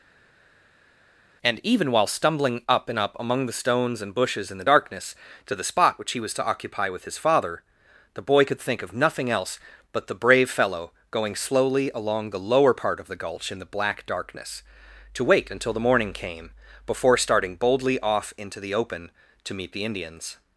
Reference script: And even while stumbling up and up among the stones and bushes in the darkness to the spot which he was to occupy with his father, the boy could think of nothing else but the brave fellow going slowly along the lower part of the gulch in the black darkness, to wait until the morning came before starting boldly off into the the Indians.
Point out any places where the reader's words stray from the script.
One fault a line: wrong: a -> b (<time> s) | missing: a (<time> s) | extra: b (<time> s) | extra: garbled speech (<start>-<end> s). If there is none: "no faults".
extra: open to meet (18.7 s)